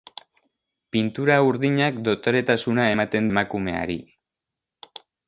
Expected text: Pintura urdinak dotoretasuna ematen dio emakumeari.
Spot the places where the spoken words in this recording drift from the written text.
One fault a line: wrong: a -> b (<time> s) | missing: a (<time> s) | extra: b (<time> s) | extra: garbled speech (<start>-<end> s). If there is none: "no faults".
missing: dio (3.3 s)